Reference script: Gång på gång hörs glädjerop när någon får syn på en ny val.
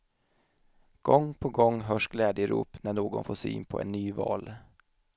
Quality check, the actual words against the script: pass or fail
pass